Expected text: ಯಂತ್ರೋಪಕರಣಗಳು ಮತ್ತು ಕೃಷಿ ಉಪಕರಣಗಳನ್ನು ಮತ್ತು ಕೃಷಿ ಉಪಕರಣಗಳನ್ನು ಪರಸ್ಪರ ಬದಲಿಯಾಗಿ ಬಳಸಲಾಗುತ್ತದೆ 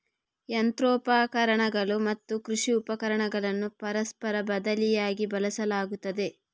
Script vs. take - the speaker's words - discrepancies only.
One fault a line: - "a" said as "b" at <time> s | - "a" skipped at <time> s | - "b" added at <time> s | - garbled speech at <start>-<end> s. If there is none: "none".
- "ಮತ್ತು ಕೃಷಿ ಉಪಕರಣಗಳನ್ನು" skipped at 3.7 s